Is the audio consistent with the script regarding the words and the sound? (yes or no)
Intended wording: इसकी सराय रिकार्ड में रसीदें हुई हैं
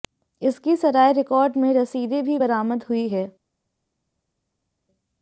no